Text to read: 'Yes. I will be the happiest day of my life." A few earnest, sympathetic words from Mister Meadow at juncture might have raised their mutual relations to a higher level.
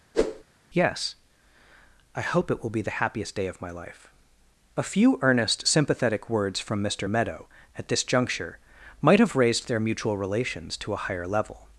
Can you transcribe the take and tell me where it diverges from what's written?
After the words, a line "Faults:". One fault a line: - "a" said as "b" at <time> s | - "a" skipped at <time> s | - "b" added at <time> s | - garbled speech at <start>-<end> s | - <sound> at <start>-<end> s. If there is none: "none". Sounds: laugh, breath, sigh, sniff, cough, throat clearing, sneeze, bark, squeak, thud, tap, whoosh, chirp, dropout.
'Yes. I hope it will be the happiest day of my life." A few earnest, sympathetic words from Mister Meadow at this juncture might have raised their mutual relations to a higher level.
Faults:
- whoosh at 0.1-0.4 s
- "hope it" added at 2.2 s
- "this" added at 7.9 s